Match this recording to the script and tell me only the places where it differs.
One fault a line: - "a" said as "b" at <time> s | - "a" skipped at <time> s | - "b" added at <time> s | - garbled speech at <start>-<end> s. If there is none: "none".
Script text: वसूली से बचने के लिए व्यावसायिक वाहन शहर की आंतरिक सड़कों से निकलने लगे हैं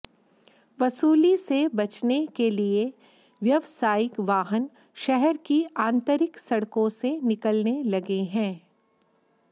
none